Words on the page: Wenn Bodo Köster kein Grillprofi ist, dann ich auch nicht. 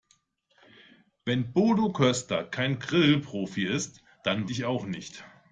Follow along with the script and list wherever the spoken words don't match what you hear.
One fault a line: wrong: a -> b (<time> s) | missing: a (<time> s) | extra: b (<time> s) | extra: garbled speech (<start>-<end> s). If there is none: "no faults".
no faults